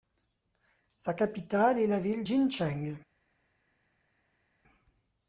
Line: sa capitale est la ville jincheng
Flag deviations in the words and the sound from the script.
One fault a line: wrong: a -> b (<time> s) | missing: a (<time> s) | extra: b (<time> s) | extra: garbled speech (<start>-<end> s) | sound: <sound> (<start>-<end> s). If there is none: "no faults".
no faults